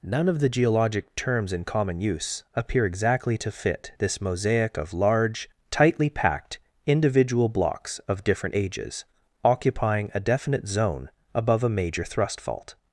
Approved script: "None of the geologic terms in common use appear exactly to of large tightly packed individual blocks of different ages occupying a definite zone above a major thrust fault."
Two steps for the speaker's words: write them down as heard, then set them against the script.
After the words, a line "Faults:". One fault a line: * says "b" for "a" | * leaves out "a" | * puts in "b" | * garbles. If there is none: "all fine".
"None of the geologic terms in common use appear exactly to fit this mosaic of large tightly packed individual blocks of different ages occupying a definite zone above a major thrust fault."
Faults:
* puts in "fit this mosaic"